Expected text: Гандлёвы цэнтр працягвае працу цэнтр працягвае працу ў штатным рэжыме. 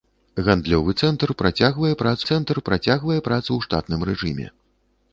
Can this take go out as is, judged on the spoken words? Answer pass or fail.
pass